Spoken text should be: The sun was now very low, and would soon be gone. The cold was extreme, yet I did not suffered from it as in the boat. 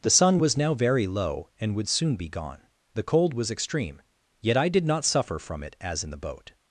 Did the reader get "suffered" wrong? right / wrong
wrong